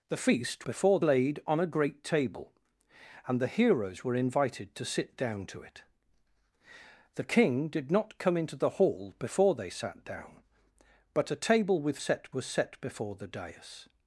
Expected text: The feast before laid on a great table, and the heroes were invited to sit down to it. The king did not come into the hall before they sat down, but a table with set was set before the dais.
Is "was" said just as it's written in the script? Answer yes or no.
yes